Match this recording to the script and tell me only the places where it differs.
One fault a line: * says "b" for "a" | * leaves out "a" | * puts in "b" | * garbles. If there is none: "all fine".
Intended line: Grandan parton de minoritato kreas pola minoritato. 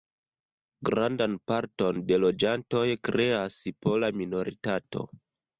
* says "loĝantoj" for "minoritato"